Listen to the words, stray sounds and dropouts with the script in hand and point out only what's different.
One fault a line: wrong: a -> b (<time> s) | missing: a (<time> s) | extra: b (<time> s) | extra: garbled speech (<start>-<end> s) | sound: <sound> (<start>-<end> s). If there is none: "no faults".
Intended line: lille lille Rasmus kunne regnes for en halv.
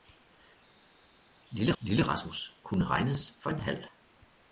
no faults